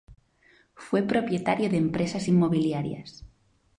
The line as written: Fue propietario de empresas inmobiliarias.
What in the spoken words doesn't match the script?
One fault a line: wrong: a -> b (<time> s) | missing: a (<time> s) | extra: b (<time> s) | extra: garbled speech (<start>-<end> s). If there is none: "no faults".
no faults